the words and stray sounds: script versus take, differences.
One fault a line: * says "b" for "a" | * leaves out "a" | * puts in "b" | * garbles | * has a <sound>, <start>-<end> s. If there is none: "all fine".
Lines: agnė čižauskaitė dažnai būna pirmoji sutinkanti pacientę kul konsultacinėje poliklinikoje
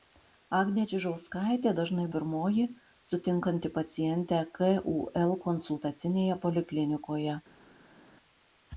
* leaves out "būna"